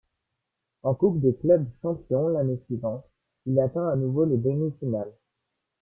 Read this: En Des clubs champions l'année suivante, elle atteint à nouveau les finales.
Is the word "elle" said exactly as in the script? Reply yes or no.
no